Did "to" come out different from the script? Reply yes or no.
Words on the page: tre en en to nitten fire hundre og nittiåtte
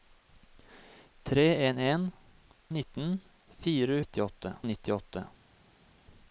yes